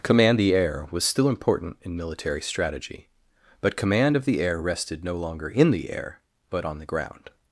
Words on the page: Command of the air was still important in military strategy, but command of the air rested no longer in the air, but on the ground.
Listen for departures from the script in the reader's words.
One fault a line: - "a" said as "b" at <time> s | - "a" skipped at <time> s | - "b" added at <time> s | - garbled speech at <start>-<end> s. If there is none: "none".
- "of" skipped at 0.4 s